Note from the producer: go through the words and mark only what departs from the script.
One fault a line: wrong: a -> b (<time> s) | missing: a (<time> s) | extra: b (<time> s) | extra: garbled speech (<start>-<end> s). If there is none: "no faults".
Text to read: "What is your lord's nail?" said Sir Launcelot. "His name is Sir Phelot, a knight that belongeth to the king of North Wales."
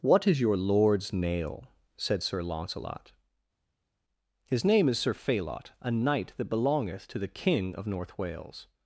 no faults